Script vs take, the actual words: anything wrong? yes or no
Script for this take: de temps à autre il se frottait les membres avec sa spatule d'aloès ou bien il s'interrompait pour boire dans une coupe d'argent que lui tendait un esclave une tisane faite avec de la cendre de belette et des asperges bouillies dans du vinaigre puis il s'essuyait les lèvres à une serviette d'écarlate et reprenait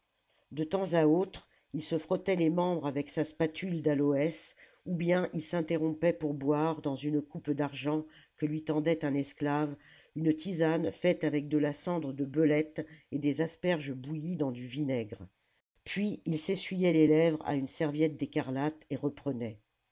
no